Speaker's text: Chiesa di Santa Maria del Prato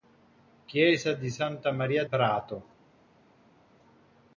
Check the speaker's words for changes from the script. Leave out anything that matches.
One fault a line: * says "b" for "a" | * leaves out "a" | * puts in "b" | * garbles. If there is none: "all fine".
* leaves out "del"